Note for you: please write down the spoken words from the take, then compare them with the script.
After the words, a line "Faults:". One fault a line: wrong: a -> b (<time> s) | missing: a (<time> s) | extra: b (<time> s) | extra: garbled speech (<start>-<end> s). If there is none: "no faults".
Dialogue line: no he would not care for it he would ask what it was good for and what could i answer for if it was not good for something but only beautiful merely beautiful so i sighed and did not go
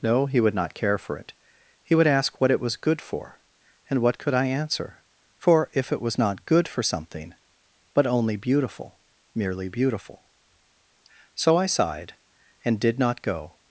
no he would not care for it he would ask what it was good for and what could i answer for if it was not good for something but only beautiful merely beautiful so i sighed and did not go
Faults:
no faults